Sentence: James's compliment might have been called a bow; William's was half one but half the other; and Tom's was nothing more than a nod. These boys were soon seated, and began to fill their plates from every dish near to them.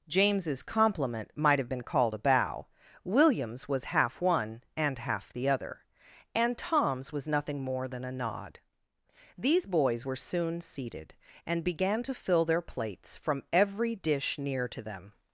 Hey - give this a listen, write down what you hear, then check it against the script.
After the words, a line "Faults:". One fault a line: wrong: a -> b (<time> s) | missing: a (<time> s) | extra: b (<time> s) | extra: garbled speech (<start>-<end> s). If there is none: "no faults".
James's compliment might have been called a bow; William's was half one and half the other; and Tom's was nothing more than a nod. These boys were soon seated, and began to fill their plates from every dish near to them.
Faults:
wrong: but -> and (4.8 s)